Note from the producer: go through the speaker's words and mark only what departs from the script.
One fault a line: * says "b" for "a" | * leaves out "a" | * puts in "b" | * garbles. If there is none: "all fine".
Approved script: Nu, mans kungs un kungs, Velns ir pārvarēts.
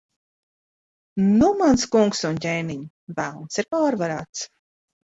* says "ķēniņ" for "kungs"